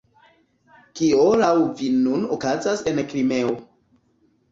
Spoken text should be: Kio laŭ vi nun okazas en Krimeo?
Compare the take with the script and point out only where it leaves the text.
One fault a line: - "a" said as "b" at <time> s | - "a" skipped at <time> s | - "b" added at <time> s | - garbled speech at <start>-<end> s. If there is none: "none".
none